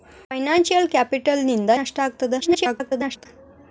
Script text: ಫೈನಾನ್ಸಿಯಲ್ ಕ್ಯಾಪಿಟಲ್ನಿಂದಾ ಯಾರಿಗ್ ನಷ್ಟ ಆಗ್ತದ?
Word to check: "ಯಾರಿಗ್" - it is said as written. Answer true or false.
false